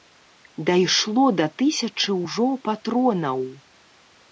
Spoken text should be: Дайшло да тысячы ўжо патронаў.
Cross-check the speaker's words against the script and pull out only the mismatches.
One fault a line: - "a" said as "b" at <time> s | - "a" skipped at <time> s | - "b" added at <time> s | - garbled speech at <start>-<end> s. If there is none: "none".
none